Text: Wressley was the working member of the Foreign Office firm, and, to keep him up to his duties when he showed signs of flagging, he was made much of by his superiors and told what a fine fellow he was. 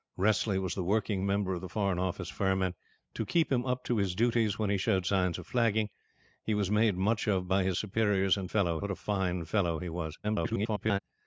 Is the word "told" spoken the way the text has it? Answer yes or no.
no